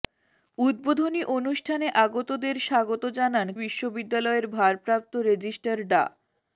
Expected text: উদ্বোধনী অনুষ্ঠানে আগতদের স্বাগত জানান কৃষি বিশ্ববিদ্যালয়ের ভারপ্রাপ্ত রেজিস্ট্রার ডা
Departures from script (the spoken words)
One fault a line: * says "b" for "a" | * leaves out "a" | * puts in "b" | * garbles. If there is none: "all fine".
* leaves out "কৃষি"